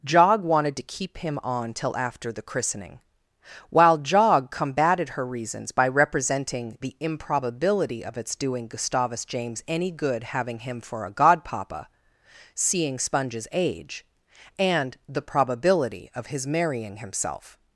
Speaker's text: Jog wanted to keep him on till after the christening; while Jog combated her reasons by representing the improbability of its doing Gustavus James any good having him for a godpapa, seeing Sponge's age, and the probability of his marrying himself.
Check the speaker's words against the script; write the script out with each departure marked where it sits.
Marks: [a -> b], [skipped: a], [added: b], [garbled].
Jog wanted to keep him on till after the christening; while Jog combated her reasons by representing the improbability of its doing Gustavus James any good having him for a godpapa, seeing Sponge's age, and the probability of his marrying himself.